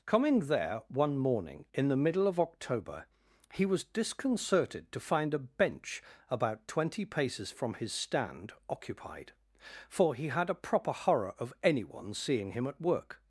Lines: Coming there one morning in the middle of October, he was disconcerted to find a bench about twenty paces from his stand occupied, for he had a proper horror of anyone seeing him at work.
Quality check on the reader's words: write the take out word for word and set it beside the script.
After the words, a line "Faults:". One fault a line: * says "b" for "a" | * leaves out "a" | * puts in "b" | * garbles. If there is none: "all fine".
Coming there one morning in the middle of October, he was disconcerted to find a bench about twenty paces from his stand occupied, for he had a proper horror of anyone seeing him at work.
Faults:
all fine